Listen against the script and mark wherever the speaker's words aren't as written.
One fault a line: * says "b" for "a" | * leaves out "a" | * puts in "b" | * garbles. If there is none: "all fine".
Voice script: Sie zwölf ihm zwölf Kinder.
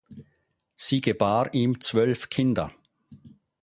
* says "gebar" for "zwölf"